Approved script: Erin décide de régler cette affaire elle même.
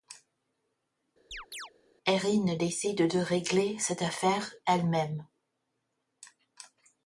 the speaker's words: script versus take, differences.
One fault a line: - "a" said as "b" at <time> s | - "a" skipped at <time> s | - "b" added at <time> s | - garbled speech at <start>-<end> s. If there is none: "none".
none